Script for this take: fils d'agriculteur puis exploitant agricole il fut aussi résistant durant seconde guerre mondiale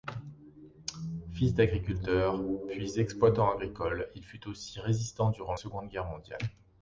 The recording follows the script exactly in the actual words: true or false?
true